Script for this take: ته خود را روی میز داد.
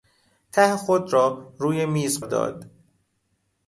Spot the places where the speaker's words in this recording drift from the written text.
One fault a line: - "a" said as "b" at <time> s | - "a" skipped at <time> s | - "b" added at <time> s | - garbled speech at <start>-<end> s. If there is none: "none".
none